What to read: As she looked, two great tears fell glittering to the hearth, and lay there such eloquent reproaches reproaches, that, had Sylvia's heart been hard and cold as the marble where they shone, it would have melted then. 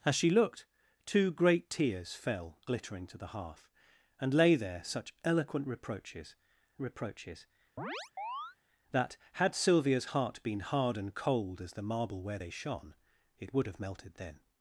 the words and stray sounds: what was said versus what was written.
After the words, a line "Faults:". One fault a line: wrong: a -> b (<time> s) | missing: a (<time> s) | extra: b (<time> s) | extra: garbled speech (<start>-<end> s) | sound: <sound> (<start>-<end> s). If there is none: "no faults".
As she looked, two great tears fell glittering to the hearth, and lay there such eloquent reproaches reproaches, that, had Sylvia's heart been hard and cold as the marble where they shone, it would have melted then.
Faults:
sound: chirp (7.8-8.6 s)